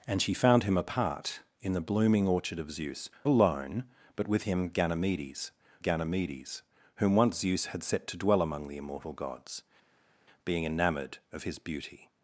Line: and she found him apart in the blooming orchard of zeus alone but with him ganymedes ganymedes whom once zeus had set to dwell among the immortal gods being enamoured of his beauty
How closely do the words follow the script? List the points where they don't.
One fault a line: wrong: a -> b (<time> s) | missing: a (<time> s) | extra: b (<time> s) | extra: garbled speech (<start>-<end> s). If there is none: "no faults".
no faults